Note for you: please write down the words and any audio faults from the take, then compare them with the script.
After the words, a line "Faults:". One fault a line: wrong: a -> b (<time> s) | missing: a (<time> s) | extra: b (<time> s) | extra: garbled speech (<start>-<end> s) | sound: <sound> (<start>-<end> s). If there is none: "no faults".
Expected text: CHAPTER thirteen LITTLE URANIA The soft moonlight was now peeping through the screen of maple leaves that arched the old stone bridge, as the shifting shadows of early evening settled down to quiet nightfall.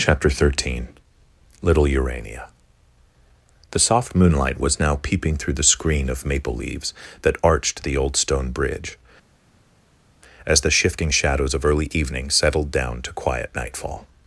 CHAPTER thirteen LITTLE URANIA The soft moonlight was now peeping through the screen of maple leaves that arched the old stone bridge, as the shifting shadows of early evening settled down to quiet nightfall.
Faults:
no faults